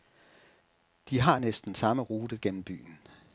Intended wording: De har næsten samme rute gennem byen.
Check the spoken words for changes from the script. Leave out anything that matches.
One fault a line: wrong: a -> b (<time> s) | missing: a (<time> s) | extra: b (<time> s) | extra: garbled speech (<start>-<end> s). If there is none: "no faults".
no faults